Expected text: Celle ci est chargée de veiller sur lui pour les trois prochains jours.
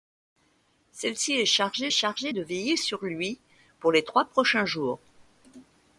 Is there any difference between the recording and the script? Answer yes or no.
yes